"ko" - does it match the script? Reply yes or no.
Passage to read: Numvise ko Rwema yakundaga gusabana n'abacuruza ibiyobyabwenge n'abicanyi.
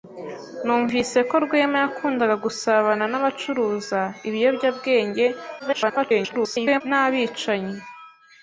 yes